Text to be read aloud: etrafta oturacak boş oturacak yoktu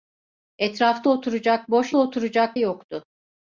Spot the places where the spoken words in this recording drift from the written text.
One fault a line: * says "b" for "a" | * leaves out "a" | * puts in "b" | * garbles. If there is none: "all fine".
all fine